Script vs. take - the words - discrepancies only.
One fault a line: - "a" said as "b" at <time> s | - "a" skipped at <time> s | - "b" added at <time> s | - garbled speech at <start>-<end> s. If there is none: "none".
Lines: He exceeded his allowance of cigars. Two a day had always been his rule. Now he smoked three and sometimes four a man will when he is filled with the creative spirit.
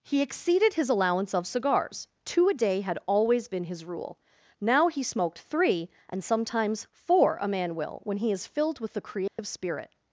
none